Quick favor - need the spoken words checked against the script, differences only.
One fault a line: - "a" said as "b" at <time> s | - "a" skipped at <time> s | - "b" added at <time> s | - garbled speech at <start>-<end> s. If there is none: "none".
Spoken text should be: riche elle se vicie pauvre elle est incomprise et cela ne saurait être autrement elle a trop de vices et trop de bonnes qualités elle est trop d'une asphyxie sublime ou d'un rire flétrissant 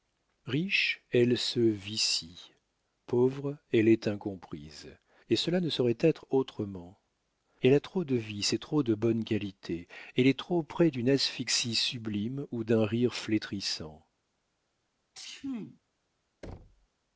- "près" added at 10.6 s